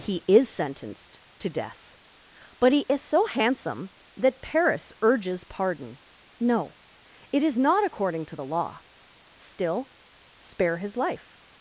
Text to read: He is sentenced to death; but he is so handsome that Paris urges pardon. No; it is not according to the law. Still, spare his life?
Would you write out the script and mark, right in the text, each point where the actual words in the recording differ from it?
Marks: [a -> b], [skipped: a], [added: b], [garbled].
He is sentenced to death; but he is so handsome that Paris urges pardon. No; it is not according to the law. Still, spare his life?